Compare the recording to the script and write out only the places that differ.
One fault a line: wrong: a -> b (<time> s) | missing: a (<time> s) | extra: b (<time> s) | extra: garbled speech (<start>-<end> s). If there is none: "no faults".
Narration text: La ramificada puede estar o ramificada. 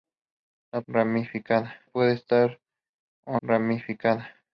no faults